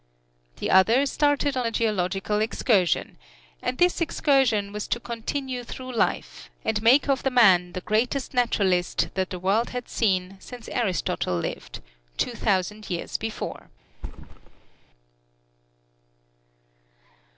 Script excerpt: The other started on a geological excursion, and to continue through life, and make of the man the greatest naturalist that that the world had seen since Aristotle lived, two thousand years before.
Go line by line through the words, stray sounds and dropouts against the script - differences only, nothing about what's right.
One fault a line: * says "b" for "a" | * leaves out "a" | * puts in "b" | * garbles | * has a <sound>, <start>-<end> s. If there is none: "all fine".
* puts in "this excursion was"
* leaves out "that"
* has a thud, 13.9-14.9 s